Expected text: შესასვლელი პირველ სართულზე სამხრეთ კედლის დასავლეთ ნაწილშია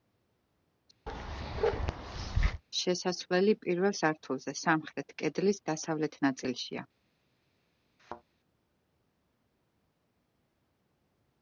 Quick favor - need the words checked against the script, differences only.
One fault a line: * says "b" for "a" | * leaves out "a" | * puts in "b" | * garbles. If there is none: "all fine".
all fine